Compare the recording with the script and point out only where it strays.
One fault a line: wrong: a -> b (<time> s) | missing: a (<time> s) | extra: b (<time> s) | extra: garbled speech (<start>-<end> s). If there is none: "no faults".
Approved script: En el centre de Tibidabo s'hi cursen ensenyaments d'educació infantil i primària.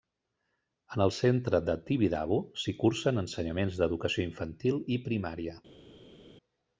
no faults